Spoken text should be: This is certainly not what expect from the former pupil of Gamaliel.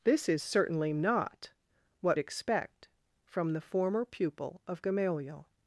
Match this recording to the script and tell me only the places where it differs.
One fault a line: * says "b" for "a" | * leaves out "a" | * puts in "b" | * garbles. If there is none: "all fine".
all fine